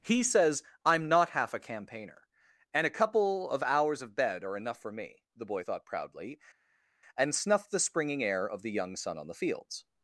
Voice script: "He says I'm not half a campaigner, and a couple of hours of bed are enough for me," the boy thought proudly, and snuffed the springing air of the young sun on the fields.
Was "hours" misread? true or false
false